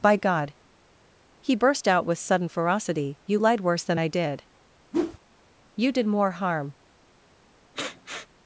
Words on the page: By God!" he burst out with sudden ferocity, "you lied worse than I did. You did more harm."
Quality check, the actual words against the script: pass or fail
pass